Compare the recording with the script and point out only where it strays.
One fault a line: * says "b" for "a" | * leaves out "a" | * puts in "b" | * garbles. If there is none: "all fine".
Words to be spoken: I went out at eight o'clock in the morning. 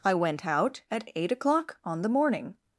* says "on" for "in"